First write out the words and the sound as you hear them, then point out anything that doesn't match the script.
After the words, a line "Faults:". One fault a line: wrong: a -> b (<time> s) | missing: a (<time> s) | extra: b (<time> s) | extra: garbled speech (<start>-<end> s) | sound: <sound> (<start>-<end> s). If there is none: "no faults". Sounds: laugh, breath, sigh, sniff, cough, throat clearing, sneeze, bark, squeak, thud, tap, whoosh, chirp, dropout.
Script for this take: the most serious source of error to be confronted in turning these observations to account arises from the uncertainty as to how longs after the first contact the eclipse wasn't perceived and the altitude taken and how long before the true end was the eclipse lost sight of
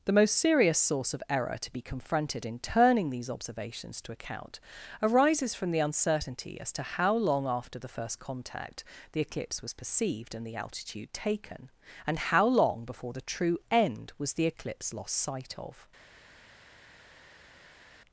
the most serious source of error to be confronted in turning these observations to account arises from the uncertainty as to how long after the first contact the eclipse was perceived and the altitude taken and how long before the true end was the eclipse lost sight of
Faults:
wrong: longs -> long (7.2 s)
wrong: wasn't -> was (9.6 s)